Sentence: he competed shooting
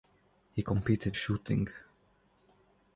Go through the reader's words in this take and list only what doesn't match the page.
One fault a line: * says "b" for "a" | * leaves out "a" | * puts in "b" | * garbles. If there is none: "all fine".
all fine